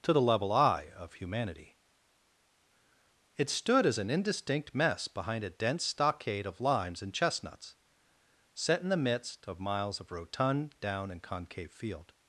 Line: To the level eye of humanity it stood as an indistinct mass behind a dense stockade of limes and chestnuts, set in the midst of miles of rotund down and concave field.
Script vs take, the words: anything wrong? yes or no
yes